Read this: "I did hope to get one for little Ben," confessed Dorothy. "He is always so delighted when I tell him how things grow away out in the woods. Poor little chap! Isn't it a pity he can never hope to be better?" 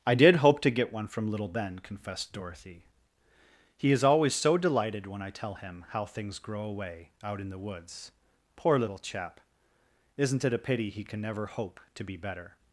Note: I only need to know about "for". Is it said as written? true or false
false